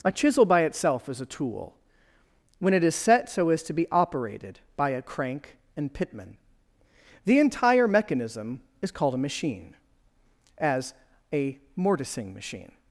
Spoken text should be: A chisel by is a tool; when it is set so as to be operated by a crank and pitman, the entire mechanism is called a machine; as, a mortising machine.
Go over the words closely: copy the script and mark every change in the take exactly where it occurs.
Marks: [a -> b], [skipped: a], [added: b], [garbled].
A chisel by [added: itself] is a tool; when it is set so as to be operated by a crank and pitman, the entire mechanism is called a machine; as, a mortising machine.